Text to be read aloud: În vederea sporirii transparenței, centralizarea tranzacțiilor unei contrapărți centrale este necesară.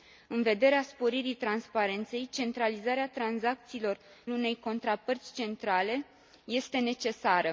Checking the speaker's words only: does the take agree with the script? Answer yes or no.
yes